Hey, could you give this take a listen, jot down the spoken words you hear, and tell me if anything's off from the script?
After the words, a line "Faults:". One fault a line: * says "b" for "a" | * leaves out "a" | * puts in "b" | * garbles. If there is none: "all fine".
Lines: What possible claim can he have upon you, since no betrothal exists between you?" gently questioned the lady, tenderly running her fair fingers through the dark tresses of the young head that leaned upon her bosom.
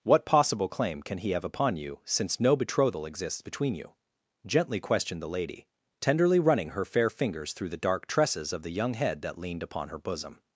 What possible claim can he have upon you, since no betrothal exists between you?" gently questioned the lady, tenderly running her fair fingers through the dark tresses of the young head that leaned upon her bosom.
Faults:
all fine